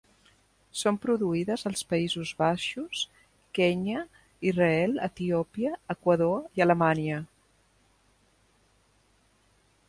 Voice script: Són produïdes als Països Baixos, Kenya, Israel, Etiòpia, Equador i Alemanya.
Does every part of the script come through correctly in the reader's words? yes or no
yes